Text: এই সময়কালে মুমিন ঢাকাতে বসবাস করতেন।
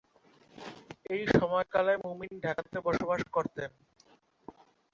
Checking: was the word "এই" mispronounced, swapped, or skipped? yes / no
no